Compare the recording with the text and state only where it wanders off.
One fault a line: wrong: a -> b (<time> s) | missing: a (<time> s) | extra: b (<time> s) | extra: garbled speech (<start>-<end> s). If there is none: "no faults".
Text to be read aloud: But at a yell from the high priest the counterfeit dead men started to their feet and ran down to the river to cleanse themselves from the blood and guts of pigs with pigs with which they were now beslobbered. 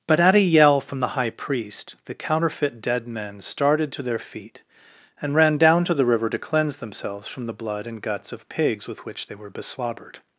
missing: pigs with (9.0 s)
missing: now (9.5 s)